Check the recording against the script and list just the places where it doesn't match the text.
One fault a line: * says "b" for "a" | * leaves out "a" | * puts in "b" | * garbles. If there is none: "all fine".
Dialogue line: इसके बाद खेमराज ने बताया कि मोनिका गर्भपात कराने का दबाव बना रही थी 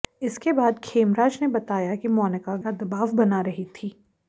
* leaves out "गर्भपात कराने"